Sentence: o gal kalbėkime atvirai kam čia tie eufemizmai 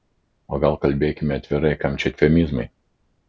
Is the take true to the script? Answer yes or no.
no